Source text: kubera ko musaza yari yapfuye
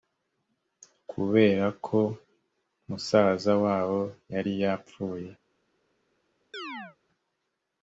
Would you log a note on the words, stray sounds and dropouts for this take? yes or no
yes